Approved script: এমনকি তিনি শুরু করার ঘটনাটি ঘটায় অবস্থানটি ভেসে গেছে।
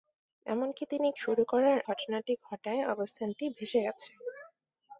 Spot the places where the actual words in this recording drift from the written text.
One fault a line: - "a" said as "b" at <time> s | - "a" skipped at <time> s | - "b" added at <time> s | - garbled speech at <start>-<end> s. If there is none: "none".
none